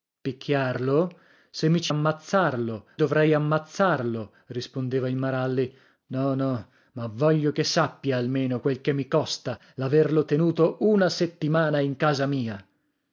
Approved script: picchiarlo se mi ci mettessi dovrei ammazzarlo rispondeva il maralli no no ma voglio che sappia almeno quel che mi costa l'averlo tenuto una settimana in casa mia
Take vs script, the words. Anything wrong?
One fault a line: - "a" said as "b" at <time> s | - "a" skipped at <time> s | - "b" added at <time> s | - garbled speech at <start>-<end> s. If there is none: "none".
- "mettessi" said as "ammazzarlo" at 1.9 s